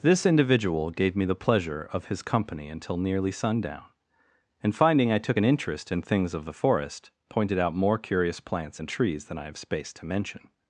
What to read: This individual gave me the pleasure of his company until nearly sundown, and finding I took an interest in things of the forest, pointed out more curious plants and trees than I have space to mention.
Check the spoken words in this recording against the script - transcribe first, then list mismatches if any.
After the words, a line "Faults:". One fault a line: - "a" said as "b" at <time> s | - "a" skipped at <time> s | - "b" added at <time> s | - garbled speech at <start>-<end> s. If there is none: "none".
This individual gave me the pleasure of his company until nearly sundown, and finding I took an interest in things of the forest, pointed out more curious plants and trees than I have space to mention.
Faults:
none